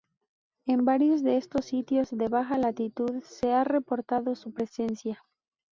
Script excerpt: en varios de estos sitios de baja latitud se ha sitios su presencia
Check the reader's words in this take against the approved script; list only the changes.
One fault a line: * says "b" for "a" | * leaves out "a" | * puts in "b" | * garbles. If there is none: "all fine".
* says "reportado" for "sitios"